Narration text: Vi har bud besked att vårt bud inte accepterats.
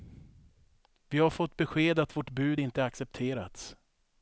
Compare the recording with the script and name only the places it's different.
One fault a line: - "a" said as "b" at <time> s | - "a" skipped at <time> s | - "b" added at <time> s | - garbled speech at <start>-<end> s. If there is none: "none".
- "bud" said as "fått" at 1.3 s